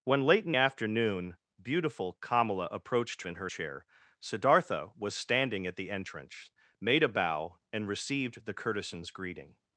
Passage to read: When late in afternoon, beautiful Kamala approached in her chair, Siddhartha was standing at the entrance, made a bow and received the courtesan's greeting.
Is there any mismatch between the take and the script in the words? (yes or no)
no